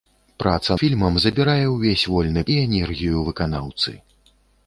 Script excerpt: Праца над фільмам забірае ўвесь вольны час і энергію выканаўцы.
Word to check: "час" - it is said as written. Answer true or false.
false